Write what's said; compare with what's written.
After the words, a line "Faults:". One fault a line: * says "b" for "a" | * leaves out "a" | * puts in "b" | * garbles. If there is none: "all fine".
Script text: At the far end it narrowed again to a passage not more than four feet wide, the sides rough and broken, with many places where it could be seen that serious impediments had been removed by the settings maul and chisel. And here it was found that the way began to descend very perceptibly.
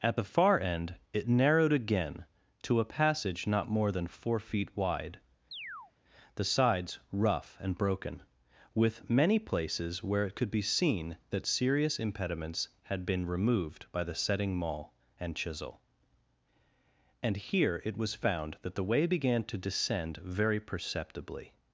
At the far end it narrowed again to a passage not more than four feet wide, the sides rough and broken, with many places where it could be seen that serious impediments had been removed by the setting maul and chisel. And here it was found that the way began to descend very perceptibly.
Faults:
* says "setting" for "settings"